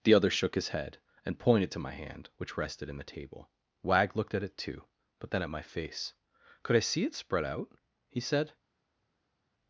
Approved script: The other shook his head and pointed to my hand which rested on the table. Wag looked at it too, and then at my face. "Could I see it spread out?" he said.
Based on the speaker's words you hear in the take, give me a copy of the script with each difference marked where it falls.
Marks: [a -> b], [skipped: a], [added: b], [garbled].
The other shook his head and pointed to my hand which rested [on -> in] the table. Wag looked at it too, [and -> but] then at my face. "Could I see it spread out?" he said.